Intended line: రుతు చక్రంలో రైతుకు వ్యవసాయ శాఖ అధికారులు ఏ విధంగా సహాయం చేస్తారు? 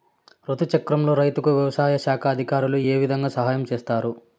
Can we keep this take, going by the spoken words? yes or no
yes